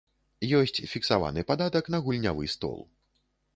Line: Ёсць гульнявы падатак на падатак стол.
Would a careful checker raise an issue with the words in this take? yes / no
yes